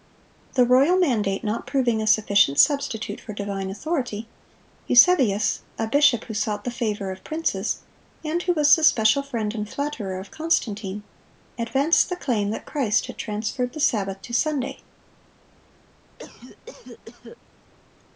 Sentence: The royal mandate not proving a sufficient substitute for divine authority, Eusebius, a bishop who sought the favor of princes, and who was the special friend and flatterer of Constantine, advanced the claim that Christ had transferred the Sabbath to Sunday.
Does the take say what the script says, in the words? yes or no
yes